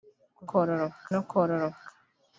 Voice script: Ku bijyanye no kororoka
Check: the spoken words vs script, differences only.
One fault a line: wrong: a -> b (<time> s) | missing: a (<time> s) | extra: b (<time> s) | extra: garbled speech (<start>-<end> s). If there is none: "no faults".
wrong: bijyanye -> kororoka (0.5 s)